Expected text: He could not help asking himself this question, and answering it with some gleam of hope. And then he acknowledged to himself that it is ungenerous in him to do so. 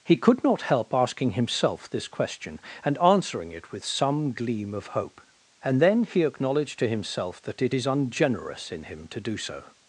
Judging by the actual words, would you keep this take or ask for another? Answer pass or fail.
pass